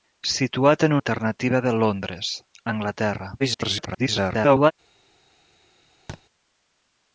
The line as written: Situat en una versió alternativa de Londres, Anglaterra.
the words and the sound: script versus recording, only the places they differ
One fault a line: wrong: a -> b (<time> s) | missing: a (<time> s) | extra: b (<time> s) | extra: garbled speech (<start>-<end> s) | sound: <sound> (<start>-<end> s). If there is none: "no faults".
missing: una versió (0.9 s)
extra: garbled speech (3.4-4.7 s)
sound: thud (6.1-6.2 s)